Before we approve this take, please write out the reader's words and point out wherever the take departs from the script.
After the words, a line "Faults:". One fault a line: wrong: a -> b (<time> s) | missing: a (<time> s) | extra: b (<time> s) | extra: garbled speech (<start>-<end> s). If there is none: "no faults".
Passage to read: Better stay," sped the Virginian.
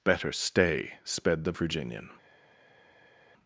Better stay," sped the Virginian.
Faults:
no faults